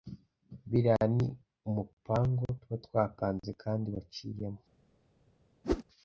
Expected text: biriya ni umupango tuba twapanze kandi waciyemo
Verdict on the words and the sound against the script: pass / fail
fail